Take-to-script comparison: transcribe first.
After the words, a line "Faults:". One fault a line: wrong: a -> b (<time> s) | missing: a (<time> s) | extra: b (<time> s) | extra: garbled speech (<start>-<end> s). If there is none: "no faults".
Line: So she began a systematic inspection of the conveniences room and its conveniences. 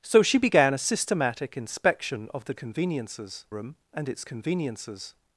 So she began a systematic inspection of the conveniences room and its conveniences.
Faults:
no faults